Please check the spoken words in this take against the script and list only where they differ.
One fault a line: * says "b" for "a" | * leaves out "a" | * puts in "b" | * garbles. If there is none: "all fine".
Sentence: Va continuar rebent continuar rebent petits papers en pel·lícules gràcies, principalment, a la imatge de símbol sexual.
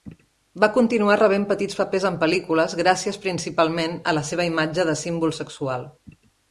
* leaves out "continuar rebent"
* puts in "seva"